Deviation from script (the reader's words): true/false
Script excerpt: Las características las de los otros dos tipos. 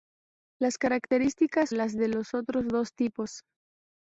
false